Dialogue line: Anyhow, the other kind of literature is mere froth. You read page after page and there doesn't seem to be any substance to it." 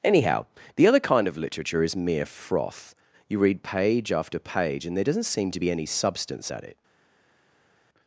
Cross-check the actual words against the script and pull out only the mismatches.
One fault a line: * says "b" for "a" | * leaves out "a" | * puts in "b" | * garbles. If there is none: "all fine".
* says "at" for "to"